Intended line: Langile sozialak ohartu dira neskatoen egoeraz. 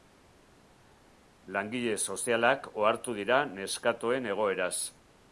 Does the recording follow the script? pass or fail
pass